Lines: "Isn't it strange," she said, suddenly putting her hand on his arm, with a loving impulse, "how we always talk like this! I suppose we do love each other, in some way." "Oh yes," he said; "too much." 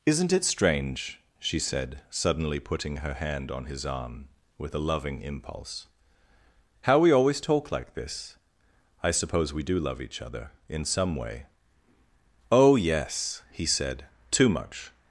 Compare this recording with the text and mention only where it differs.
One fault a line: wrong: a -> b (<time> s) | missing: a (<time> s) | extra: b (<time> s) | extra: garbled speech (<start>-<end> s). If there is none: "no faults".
no faults